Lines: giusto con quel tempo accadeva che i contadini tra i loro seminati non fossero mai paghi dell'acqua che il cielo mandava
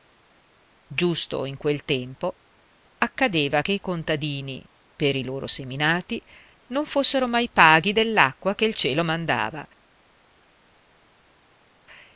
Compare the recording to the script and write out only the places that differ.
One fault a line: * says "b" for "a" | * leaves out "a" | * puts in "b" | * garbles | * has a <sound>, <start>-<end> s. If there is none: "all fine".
* says "in" for "con"
* says "per" for "tra"